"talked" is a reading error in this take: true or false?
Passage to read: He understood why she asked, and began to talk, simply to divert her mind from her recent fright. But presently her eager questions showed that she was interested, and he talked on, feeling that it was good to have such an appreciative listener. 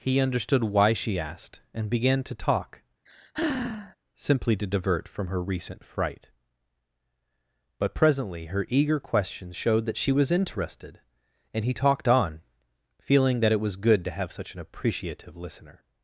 false